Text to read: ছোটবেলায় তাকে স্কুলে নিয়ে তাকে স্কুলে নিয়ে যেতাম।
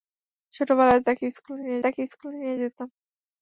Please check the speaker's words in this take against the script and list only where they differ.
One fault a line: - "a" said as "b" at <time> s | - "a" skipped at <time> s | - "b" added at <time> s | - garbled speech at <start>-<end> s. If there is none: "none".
none